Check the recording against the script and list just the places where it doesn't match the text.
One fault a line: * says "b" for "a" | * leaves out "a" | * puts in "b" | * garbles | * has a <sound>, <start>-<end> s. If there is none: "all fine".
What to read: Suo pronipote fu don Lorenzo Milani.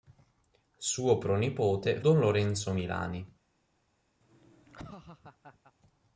* leaves out "fu"
* has a laugh, 4.2-5.7 s